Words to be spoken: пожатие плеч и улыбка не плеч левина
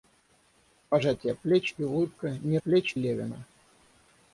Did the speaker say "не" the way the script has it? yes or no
yes